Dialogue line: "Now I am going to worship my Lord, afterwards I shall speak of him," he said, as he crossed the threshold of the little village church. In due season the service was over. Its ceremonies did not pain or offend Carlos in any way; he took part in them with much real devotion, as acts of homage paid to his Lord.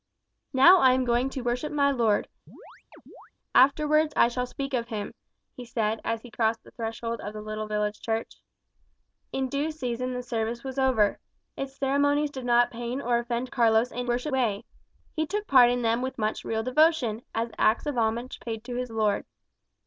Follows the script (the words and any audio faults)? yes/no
no